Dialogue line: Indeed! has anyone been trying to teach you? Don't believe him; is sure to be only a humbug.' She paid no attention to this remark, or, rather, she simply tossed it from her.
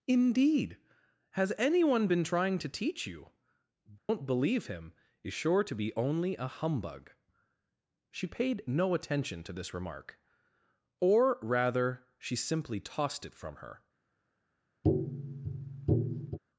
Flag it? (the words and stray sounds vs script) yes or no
yes